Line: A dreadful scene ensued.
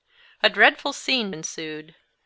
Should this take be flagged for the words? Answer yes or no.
no